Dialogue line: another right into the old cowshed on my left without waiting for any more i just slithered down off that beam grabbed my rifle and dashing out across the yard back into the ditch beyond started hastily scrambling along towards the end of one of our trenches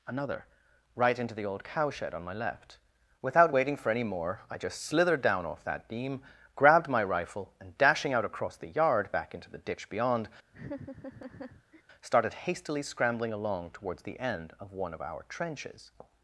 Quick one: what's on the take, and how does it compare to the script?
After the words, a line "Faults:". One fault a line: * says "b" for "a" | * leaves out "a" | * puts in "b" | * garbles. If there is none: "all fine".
another right into the old cowshed on my left without waiting for any more i just slithered down off that beam grabbed my rifle and dashing out across the yard back into the ditch beyond started hastily scrambling along towards the end of one of our trenches
Faults:
all fine